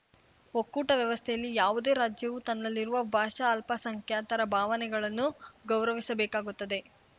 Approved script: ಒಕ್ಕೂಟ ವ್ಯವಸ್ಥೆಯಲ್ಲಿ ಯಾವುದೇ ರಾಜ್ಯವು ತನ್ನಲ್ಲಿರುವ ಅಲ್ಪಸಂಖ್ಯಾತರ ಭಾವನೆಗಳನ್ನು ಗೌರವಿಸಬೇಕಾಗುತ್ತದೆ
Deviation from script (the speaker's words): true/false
true